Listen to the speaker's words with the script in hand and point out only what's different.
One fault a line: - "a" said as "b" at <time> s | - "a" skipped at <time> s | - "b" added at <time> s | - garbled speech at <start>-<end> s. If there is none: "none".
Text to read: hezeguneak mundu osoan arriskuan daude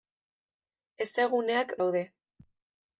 - "mundu osoan arriskuan" skipped at 1.8 s